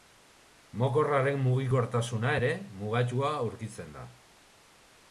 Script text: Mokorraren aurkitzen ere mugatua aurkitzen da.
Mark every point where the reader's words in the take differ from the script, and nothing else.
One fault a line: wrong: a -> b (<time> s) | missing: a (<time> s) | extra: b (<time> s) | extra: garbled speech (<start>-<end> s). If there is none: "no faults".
wrong: aurkitzen -> mugikortasuna (1.4 s)